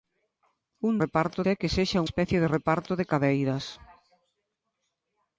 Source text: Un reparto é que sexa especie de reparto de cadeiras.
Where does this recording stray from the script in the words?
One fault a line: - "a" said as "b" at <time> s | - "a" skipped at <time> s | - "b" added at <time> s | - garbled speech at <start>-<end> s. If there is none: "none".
none